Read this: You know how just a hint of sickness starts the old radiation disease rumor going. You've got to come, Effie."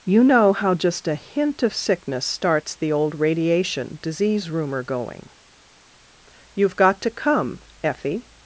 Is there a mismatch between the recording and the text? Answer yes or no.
no